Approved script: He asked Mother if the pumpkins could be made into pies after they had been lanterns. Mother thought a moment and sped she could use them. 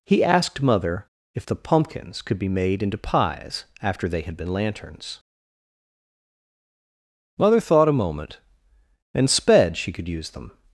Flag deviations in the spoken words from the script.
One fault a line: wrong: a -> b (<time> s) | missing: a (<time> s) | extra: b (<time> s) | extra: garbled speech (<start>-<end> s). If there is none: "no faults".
no faults